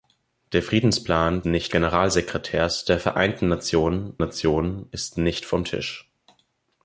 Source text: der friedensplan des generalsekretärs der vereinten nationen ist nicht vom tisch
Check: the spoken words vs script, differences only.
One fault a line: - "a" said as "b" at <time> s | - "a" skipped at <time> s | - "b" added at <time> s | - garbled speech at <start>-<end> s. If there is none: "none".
- "des" said as "nicht" at 1.4 s
- "nationen" added at 4.2 s